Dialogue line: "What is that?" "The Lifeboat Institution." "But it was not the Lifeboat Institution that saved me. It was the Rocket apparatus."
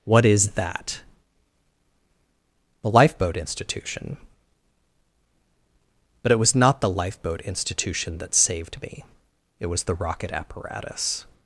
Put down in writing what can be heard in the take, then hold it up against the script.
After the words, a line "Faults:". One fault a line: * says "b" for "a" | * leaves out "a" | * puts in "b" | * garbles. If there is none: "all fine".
"What is that?" "The Lifeboat Institution." "But it was not the Lifeboat Institution that saved me. It was the Rocket apparatus."
Faults:
all fine